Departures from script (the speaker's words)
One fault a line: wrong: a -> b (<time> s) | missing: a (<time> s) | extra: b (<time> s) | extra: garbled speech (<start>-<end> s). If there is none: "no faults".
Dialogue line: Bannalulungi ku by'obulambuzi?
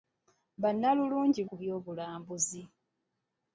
no faults